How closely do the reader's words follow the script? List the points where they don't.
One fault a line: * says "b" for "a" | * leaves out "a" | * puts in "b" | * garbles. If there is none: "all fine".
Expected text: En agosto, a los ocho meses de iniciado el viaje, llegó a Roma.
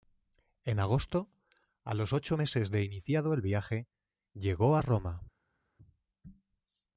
all fine